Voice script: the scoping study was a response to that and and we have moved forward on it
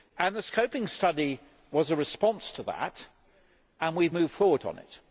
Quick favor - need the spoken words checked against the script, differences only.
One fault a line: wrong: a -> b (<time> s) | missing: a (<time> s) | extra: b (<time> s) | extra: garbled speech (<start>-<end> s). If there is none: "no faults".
missing: and (4.0 s)